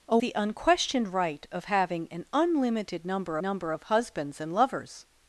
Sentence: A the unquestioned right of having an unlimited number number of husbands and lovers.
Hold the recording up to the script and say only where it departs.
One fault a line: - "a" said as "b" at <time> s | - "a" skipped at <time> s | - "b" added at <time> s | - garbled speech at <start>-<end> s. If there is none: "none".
none